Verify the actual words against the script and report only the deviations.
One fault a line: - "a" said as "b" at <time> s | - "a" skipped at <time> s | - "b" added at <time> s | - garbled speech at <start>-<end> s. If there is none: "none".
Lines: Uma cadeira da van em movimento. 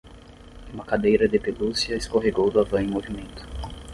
- "de pelúcia escorregou" added at 1.3 s